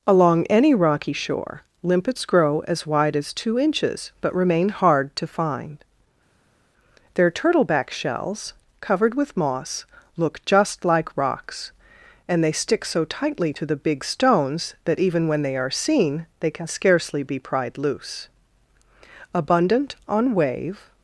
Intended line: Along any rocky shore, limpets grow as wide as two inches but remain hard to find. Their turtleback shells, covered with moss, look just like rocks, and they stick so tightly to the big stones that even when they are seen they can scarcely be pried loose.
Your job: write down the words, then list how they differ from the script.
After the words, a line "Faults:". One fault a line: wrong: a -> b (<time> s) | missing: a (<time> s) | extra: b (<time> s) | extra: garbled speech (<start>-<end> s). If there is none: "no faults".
Along any rocky shore, limpets grow as wide as two inches but remain hard to find. Their turtleback shells, covered with moss, look just like rocks, and they stick so tightly to the big stones that even when they are seen they can scarcely be pried loose. Abundant on wave
Faults:
extra: Abundant on wave (19.3 s)